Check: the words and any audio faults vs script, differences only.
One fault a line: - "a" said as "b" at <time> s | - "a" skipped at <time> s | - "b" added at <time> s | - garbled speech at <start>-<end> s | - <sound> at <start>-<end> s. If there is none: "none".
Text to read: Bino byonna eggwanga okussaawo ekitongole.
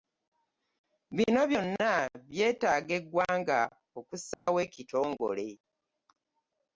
- "byetaaga" added at 2.3 s
- dropout at 4.3-4.5 s